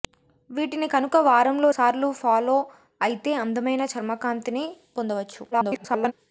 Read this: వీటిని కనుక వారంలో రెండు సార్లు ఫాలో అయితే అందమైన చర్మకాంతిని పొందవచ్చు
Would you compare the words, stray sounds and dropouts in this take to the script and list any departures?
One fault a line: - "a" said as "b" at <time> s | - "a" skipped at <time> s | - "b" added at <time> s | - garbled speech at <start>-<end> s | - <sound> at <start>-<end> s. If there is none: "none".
- "రెండు" skipped at 1.7 s
- garbled speech at 5.5-6.1 s